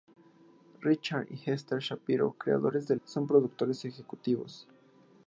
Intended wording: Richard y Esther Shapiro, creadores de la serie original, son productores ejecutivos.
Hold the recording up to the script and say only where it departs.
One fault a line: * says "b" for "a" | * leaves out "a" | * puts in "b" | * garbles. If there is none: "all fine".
* leaves out "la serie original"